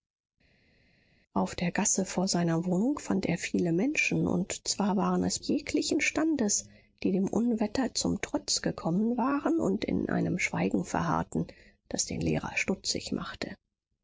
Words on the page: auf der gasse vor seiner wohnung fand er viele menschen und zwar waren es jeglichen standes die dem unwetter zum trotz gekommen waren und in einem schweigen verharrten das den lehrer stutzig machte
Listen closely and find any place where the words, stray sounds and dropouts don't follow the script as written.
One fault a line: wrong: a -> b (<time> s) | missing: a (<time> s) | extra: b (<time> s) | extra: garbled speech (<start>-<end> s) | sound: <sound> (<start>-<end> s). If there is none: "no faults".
no faults